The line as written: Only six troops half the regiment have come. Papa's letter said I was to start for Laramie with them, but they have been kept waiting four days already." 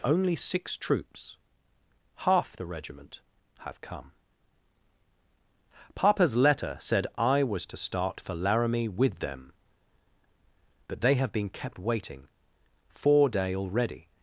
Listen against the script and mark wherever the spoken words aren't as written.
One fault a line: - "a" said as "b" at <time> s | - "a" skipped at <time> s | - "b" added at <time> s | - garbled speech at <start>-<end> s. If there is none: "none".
- "days" said as "day" at 13.3 s